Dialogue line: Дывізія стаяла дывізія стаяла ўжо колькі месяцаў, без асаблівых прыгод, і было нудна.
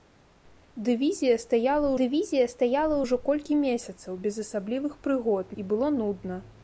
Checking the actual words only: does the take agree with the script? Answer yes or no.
yes